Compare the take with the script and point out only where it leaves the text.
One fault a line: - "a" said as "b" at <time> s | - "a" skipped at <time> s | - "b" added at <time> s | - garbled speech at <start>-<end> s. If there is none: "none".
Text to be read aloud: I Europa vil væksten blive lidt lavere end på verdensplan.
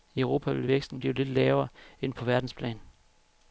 none